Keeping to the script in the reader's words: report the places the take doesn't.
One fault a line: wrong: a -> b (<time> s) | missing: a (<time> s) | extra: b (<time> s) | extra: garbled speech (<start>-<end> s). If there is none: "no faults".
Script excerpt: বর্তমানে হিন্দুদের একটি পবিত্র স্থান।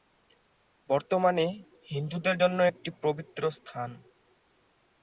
extra: জন্য (2.4 s)